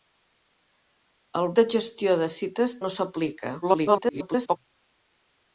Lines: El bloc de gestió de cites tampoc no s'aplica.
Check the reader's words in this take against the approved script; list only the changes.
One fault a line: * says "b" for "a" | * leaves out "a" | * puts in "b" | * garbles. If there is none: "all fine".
* leaves out "bloc"
* leaves out "tampoc"
* garbles